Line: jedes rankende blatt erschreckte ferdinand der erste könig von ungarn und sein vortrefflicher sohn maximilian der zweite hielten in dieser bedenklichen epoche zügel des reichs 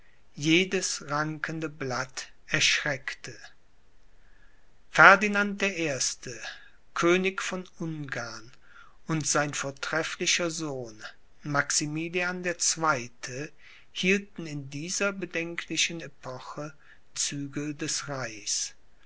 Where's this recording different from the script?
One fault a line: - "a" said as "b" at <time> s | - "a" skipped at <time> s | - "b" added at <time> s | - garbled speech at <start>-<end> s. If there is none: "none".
none